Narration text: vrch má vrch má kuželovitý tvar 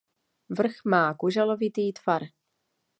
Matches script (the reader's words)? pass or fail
fail